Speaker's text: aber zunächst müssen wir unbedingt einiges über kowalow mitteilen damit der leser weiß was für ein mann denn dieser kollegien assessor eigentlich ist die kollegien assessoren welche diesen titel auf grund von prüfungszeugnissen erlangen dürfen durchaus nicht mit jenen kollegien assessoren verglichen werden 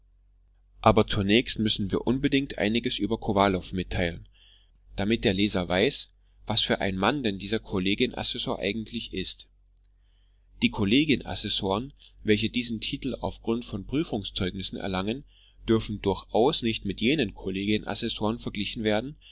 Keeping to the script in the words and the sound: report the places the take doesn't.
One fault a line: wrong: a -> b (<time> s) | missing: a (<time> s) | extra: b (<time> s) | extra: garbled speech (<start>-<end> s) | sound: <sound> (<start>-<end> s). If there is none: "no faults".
no faults